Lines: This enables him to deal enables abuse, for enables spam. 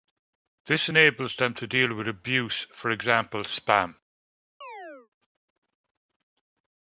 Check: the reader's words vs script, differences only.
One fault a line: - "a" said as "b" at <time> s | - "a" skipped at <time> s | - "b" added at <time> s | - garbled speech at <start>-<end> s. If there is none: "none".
- "him" said as "them" at 1.3 s
- "enables" said as "with" at 1.9 s
- "enables" said as "example" at 2.9 s